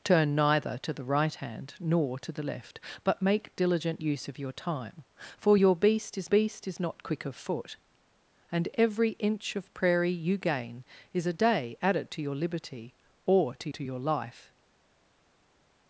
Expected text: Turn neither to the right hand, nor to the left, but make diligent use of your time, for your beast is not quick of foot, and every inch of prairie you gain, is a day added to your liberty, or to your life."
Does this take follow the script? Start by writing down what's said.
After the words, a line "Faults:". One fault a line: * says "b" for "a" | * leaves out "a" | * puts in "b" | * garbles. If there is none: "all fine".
Turn neither to the right hand, nor to the left, but make diligent use of your time, for your beast is beast is not quick of foot, and every inch of prairie you gain, is a day added to your liberty, or to to your life."
Faults:
* puts in "beast is"
* puts in "to"